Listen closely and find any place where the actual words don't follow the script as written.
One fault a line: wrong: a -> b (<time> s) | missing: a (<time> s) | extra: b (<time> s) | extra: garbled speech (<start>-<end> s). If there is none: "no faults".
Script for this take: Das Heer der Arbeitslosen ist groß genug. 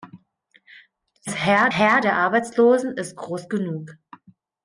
extra: Heer (1.8 s)